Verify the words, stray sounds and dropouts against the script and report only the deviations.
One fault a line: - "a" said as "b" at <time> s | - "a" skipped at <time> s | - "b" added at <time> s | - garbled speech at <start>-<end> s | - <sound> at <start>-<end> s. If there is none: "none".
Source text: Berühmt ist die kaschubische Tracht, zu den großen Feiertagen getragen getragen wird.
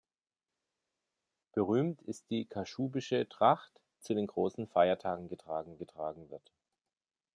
none